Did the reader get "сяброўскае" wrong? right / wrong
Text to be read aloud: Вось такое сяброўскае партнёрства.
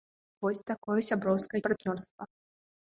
right